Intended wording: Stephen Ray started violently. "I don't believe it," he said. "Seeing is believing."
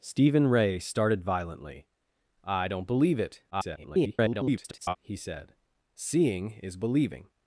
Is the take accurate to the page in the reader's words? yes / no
no